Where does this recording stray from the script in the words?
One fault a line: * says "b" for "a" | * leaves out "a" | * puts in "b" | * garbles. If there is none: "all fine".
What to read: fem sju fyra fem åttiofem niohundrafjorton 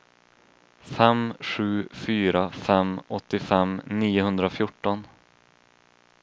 all fine